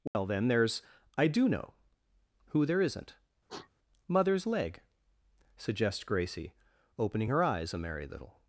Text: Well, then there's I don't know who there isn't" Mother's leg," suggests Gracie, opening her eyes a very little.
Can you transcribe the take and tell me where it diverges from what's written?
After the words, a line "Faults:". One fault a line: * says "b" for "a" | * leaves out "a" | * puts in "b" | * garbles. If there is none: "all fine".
Well, then there's I do know who there isn't" Mother's leg," suggests Gracie, opening her eyes a merry little.
Faults:
* says "do" for "don't"
* says "merry" for "very"